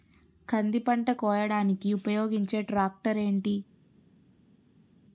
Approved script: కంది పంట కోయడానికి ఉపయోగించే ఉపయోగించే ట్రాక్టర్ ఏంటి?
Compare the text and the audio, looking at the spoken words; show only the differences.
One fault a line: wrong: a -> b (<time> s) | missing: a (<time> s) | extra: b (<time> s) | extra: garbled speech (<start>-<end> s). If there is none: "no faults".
missing: ఉపయోగించే (2.6 s)